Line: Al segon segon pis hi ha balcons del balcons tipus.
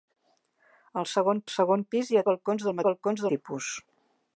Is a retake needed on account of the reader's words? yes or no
no